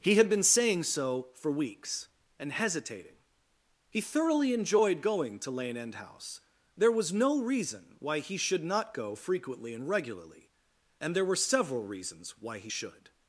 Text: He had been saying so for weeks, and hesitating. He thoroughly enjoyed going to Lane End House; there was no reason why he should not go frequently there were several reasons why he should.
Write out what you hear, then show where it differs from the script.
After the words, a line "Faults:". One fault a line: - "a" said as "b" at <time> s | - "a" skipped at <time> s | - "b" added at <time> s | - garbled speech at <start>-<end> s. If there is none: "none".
He had been saying so for weeks, and hesitating. He thoroughly enjoyed going to Lane End House; there was no reason why he should not go frequently and regularly, and there were several reasons why he should.
Faults:
- "and regularly and" added at 9.7 s